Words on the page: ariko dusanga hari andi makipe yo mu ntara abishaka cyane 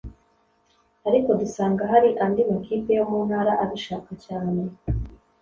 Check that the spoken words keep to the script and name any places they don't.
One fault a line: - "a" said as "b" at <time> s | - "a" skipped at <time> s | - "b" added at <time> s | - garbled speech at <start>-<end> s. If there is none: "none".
none